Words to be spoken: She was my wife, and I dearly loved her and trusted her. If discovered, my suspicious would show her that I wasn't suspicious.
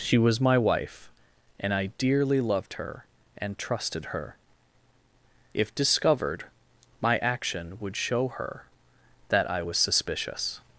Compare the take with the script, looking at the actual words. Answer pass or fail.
fail